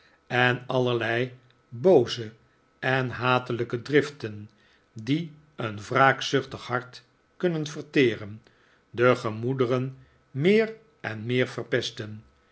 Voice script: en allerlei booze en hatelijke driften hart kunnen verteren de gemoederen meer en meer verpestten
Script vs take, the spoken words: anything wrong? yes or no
yes